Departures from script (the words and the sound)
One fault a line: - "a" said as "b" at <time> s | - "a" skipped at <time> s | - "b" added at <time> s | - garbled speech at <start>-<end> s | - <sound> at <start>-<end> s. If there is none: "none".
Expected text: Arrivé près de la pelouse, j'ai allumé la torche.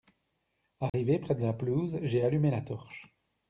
- dropout at 0.9-0.9 s